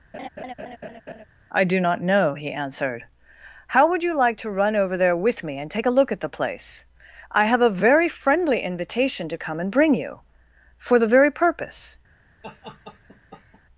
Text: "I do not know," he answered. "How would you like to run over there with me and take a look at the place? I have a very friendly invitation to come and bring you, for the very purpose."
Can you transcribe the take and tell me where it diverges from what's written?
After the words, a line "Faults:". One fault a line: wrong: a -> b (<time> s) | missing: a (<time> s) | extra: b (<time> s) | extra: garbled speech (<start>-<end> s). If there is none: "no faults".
"I do not know," he answered. "How would you like to run over there with me and take a look at the place? I have a very friendly invitation to come and bring you, for the very purpose."
Faults:
no faults